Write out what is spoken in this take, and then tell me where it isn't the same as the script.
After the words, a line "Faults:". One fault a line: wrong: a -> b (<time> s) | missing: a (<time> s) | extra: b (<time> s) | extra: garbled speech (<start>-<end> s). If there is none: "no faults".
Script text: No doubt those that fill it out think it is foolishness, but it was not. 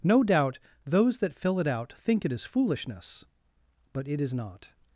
No doubt those that fill it out think it is foolishness, but it is not.
Faults:
wrong: was -> is (4.2 s)